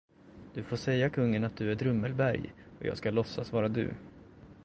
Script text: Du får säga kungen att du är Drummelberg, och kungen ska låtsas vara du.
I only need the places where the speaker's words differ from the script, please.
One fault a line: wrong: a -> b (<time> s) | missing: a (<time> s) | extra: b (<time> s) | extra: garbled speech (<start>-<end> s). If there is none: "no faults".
wrong: kungen -> jag (2.8 s)